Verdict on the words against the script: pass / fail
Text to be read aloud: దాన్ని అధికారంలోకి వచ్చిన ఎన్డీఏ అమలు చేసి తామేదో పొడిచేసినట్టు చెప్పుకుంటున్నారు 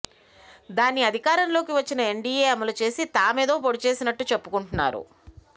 pass